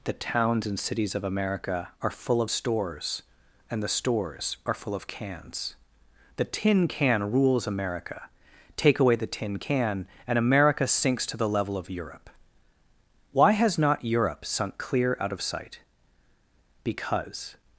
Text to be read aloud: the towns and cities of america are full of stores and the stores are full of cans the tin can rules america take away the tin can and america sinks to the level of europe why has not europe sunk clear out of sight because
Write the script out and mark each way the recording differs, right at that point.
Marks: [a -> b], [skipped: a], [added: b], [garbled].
the towns and cities of america are full of stores and the stores are full of cans the tin can rules america take away the tin can and america sinks to the level of europe why has not europe sunk clear out of sight because